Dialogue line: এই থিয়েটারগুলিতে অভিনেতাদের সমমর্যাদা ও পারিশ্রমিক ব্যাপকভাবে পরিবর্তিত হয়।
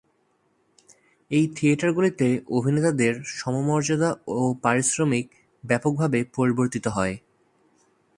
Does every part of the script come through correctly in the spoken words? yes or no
yes